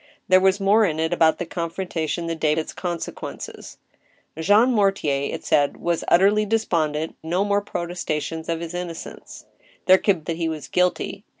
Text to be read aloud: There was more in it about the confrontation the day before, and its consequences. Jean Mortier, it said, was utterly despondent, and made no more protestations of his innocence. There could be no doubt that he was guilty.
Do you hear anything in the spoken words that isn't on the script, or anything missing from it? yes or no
yes